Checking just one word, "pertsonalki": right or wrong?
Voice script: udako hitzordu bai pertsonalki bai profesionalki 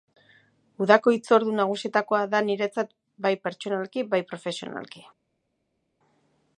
right